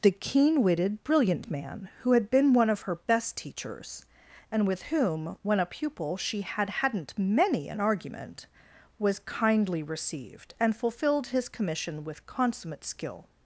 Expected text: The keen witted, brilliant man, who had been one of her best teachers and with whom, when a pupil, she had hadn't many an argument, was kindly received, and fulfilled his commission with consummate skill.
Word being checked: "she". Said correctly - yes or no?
yes